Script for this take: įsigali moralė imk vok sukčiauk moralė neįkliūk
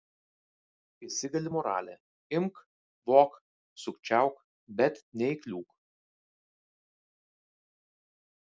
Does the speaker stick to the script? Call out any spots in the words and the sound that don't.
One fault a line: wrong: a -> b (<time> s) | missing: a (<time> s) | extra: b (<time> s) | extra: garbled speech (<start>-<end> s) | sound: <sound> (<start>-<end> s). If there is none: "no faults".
wrong: moralė -> bet (4.8 s)